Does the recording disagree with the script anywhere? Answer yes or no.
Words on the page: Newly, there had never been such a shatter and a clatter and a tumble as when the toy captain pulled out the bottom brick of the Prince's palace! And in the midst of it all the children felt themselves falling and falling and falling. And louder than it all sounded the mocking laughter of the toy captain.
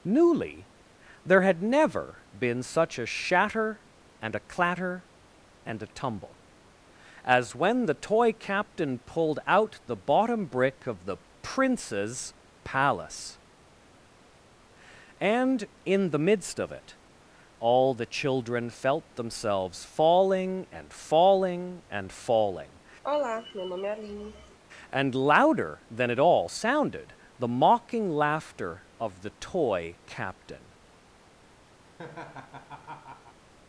no